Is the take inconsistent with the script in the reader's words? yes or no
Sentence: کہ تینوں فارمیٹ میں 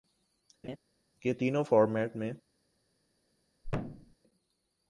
no